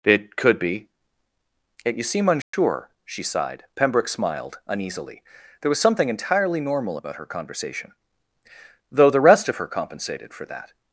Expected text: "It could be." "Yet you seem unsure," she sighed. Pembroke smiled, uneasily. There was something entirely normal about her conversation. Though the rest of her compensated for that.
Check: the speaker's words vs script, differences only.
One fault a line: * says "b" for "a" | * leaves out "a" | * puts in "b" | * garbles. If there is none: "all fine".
all fine